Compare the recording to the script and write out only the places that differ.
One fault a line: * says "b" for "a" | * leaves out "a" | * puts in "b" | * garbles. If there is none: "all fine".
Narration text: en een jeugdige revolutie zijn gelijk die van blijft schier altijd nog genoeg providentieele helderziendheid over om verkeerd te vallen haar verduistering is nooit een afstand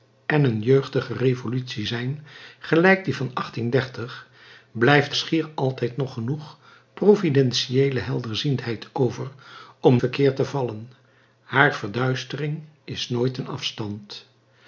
all fine